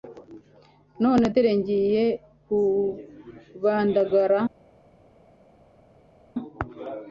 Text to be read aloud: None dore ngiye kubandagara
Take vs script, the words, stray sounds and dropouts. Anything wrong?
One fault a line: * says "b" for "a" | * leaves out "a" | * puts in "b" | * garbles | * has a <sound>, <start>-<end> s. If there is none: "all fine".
all fine